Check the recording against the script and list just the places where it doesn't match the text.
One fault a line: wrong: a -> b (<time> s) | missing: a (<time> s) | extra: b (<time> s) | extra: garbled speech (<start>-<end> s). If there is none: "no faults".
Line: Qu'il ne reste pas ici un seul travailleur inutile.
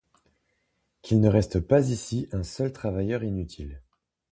no faults